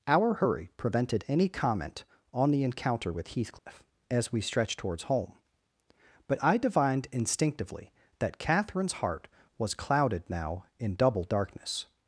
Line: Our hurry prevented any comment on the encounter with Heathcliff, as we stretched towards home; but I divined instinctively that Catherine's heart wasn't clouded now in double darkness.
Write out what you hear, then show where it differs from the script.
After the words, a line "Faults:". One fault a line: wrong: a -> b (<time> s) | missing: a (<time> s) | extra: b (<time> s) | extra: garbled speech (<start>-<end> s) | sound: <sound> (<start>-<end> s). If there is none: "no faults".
Our hurry prevented any comment on the encounter with Heathcliff, as we stretched towards home; but I divined instinctively that Catherine's heart was clouded now in double darkness.
Faults:
sound: dropout (3.6-3.7 s)
wrong: wasn't -> was (9.6 s)